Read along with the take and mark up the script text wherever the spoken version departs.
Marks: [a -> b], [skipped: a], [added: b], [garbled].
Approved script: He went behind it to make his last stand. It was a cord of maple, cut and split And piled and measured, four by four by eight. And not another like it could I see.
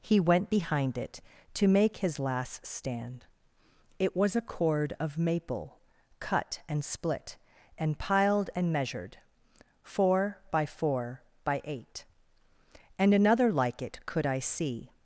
He went behind it to make his last stand. It was a cord of maple, cut and split And piled and measured, four by four by eight. And [skipped: not] another like it could I see.